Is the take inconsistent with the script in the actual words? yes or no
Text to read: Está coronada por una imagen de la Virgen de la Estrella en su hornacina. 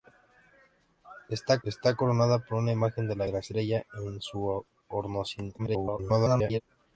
yes